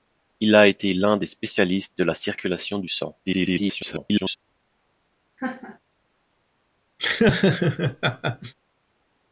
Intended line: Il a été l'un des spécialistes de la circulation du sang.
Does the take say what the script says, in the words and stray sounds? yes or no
no